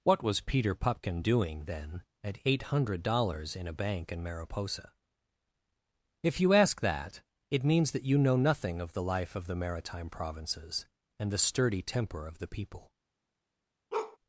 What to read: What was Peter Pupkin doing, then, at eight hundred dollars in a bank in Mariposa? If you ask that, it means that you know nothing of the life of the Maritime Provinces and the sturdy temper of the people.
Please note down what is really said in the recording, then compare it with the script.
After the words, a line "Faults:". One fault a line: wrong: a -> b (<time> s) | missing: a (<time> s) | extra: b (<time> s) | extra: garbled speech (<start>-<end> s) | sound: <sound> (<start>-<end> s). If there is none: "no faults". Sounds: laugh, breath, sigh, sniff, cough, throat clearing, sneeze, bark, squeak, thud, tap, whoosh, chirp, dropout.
What was Peter Pupkin doing, then, at eight hundred dollars in a bank in Mariposa? If you ask that, it means that you know nothing of the life of the Maritime Provinces and the sturdy temper of the people.
Faults:
sound: bark (13.9-14.2 s)